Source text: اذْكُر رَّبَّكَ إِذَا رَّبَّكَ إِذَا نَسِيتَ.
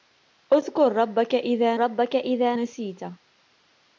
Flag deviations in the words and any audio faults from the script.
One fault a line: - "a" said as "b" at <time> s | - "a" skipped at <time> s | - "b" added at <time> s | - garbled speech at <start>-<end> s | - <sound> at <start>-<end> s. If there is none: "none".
none